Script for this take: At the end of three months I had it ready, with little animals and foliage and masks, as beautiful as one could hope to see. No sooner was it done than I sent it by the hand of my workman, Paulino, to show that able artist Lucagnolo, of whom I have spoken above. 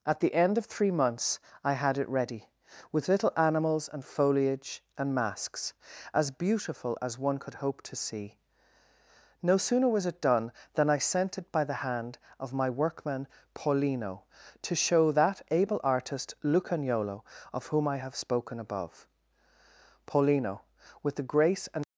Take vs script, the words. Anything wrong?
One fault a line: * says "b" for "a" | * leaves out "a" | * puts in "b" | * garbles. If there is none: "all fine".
* puts in "Paulino with the grace and"